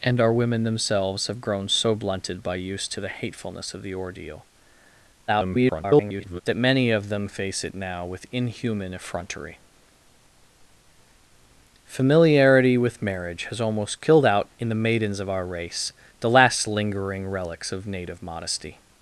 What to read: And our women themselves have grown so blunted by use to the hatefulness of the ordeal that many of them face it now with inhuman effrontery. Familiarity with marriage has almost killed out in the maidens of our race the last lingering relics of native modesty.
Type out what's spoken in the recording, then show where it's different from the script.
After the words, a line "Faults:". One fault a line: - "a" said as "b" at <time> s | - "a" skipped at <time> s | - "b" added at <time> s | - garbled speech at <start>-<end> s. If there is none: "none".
And our women themselves have grown so blunted by use to the hatefulness of the ordeal [garbled] that many of them face it now with inhuman effrontery. Familiarity with marriage has almost killed out in the maidens of our race the last lingering relics of native modesty.
Faults:
- garbled speech at 5.3-6.4 s